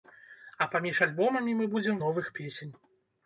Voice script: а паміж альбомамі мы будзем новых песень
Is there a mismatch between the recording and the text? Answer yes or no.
no